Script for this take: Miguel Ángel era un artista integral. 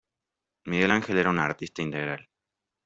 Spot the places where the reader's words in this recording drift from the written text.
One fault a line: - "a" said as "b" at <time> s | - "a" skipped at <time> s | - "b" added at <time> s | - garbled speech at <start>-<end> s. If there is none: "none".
none